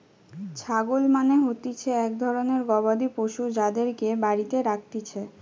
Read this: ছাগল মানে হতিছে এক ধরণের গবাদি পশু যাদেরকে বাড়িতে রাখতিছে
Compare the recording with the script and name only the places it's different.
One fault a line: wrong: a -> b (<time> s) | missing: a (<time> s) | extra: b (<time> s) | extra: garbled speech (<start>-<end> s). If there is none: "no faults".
no faults